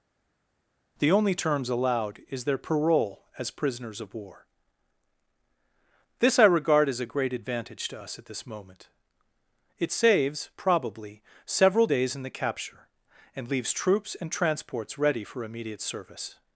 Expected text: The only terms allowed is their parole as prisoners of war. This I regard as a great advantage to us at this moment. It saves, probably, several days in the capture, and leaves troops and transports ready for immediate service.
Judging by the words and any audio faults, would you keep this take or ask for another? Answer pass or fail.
pass